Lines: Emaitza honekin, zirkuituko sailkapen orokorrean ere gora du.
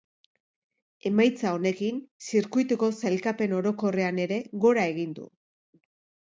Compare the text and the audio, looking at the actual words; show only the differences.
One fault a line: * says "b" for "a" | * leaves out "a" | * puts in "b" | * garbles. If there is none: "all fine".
* puts in "egin"